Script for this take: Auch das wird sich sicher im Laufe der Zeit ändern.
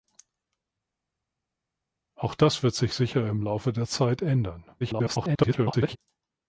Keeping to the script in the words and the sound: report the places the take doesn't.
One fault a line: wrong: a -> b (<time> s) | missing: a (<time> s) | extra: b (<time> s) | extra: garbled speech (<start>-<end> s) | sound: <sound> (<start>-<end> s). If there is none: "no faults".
extra: garbled speech (4.8-6.0 s)